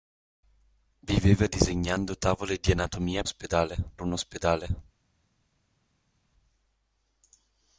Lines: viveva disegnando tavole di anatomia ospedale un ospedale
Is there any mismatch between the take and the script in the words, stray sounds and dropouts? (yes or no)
no